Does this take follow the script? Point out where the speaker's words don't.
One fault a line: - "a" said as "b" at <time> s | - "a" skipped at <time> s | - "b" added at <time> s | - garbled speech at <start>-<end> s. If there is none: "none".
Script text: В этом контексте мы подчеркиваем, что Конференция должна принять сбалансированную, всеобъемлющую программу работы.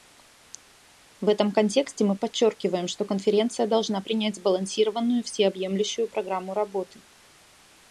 none